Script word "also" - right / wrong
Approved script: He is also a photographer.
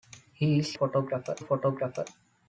wrong